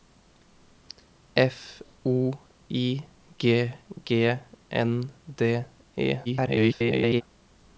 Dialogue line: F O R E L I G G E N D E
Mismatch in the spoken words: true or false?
true